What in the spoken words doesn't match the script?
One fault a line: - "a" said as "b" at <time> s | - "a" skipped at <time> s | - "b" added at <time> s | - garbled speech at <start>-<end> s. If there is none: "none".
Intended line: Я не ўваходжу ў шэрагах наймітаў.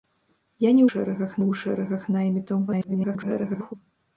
- "ўваходжу" said as "шэрагах" at 0.9 s
- garbled speech at 2.7-3.7 s